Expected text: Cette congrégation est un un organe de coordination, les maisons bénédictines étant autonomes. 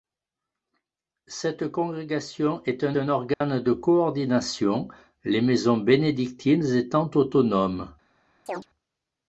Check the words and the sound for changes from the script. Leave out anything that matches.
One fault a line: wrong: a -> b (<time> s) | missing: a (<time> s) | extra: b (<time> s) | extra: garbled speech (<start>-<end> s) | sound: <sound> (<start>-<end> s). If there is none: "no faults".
sound: dropout (3.3-3.4 s)
sound: chirp (8.5-8.7 s)